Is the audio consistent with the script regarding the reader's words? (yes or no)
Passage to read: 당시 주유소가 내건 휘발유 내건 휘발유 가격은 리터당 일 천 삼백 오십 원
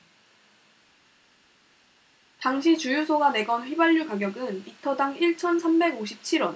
no